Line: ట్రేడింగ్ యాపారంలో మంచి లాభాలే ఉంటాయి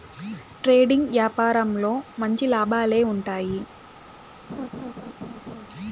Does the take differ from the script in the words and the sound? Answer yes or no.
yes